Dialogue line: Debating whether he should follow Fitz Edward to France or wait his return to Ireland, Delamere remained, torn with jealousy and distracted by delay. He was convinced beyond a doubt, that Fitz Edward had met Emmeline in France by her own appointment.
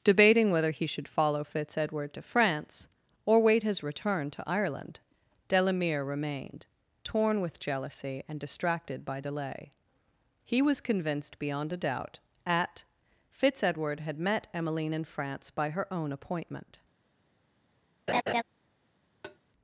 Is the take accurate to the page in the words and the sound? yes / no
no